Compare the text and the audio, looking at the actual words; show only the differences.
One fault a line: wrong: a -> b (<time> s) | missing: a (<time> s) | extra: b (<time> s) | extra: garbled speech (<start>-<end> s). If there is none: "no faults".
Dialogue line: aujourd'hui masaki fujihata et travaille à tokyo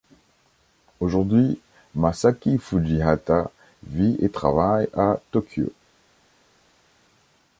extra: vit (3.8 s)